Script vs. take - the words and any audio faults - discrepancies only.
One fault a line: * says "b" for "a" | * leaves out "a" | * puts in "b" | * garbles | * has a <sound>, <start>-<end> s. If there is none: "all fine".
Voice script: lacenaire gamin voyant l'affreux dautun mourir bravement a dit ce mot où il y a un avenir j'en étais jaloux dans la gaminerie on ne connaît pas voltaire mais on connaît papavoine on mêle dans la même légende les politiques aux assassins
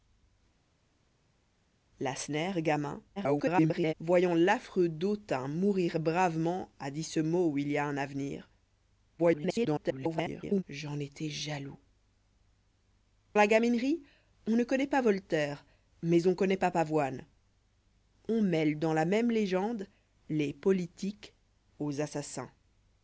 * garbles
* garbles
* leaves out "dans"